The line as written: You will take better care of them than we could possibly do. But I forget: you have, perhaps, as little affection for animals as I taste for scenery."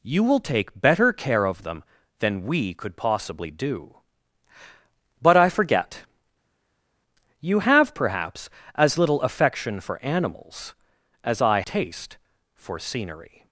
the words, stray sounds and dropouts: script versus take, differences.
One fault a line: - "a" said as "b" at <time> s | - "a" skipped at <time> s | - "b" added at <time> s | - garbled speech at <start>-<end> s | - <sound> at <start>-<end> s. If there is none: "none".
none